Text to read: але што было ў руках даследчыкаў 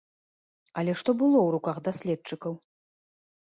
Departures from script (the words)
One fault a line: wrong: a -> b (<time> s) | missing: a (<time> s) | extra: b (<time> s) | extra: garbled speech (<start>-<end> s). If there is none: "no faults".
no faults